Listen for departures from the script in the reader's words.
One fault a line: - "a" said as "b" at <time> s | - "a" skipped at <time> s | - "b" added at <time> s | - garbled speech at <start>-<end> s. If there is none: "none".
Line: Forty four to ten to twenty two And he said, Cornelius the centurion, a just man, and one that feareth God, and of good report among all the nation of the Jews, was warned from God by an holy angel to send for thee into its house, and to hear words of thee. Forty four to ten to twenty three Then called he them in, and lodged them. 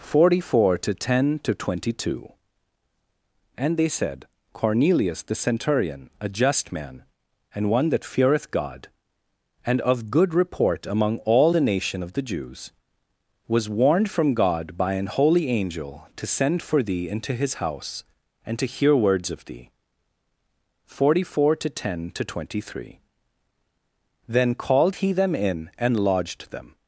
- "he" said as "they" at 3.8 s
- "its" said as "his" at 17.3 s